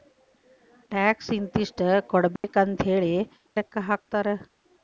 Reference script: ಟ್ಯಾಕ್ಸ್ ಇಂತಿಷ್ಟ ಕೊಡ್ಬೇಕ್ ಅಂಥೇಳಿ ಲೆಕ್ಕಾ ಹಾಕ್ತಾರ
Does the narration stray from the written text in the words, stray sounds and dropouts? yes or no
yes